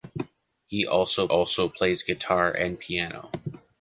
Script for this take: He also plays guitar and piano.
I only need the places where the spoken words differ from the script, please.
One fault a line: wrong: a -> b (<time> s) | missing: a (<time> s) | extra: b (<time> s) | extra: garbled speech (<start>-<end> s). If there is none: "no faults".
extra: also (1.3 s)